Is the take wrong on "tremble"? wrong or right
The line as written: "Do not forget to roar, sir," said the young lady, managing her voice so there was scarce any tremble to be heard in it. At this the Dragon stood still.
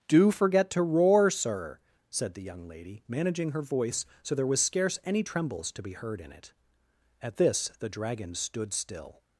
wrong